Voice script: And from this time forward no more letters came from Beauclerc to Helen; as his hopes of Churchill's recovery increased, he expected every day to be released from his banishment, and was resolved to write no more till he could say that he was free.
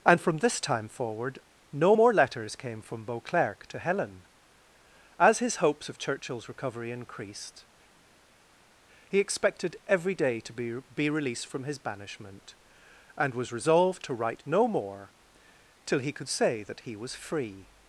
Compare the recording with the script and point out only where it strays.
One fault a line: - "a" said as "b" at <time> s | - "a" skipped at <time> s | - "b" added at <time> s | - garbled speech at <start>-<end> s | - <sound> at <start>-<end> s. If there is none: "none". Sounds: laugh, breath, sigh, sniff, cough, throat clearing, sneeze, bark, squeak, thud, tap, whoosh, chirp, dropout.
- "be" added at 10.9 s